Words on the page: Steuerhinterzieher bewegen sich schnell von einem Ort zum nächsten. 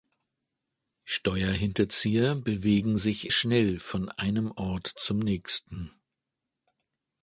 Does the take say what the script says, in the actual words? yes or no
yes